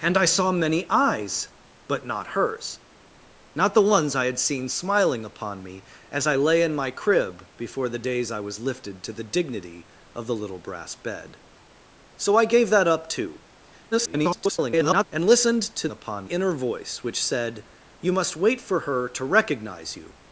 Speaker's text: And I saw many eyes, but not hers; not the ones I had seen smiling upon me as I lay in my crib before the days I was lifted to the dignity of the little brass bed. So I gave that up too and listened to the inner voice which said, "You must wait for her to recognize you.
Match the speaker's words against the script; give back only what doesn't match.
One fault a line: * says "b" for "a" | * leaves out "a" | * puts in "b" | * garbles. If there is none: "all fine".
* garbles
* says "upon" for "the"